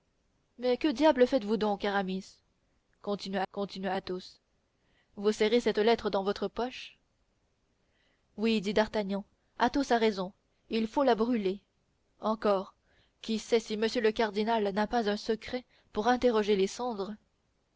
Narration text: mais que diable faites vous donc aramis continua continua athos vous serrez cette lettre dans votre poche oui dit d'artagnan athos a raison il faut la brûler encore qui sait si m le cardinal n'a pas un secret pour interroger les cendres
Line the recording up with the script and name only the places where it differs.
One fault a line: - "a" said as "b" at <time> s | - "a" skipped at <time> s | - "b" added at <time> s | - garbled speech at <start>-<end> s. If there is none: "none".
none